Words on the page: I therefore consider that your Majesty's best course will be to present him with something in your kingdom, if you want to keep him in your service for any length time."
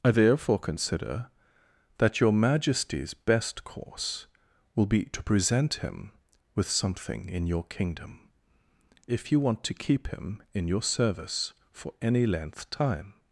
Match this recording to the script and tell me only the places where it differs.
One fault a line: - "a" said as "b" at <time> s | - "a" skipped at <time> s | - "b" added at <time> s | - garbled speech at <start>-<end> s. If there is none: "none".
none